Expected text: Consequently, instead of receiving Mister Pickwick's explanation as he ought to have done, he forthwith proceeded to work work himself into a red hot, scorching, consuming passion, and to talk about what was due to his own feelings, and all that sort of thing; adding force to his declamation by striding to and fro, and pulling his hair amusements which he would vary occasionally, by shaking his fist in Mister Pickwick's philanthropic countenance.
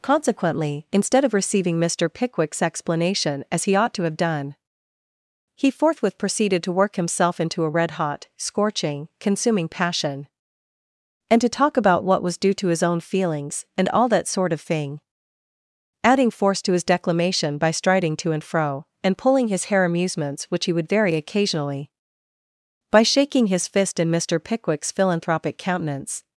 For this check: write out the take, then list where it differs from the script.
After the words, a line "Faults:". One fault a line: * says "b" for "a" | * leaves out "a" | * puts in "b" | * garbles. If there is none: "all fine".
Consequently, instead of receiving Mister Pickwick's explanation as he ought to have done, he forthwith proceeded to work himself into a red hot, scorching, consuming passion, and to talk about what was due to his own feelings, and all that sort of thing; adding force to his declamation by striding to and fro, and pulling his hair amusements which he would vary occasionally, by shaking his fist in Mister Pickwick's philanthropic countenance.
Faults:
* leaves out "work"